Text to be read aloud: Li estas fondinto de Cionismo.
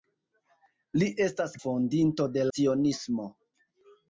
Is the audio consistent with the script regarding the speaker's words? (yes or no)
yes